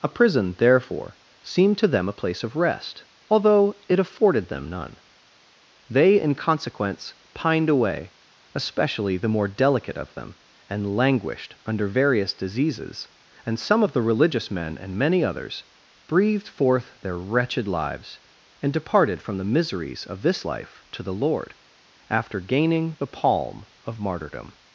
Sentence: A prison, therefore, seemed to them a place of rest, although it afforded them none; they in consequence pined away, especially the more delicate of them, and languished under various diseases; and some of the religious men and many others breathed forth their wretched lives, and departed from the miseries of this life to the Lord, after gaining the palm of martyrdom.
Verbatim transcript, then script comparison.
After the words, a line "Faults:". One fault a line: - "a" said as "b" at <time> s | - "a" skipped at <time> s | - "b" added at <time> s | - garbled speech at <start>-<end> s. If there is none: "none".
A prison, therefore, seemed to them a place of rest, although it afforded them none; they in consequence pined away, especially the more delicate of them, and languished under various diseases; and some of the religious men and many others breathed forth their wretched lives, and departed from the miseries of this life to the Lord, after gaining the palm of martyrdom.
Faults:
none